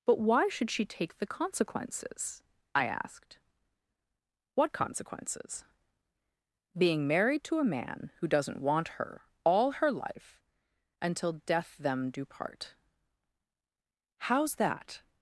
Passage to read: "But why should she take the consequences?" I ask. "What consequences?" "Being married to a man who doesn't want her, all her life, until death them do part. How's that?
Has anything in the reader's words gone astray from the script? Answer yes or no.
yes